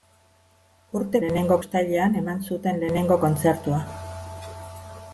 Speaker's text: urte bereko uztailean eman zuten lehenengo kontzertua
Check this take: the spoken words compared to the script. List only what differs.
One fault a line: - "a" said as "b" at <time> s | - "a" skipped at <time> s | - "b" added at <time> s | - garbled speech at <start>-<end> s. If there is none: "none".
- "bereko" said as "lehenengo" at 1.2 s